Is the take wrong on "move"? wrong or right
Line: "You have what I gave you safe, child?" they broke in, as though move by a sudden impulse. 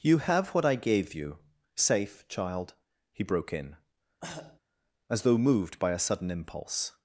wrong